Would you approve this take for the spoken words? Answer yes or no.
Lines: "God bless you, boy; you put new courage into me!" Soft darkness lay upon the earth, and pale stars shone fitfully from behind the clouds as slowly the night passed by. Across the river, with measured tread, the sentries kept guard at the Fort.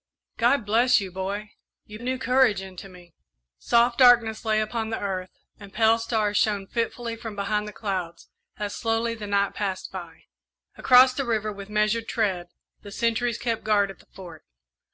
no